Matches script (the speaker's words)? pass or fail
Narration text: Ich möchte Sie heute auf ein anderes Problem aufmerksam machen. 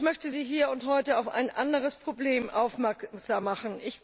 fail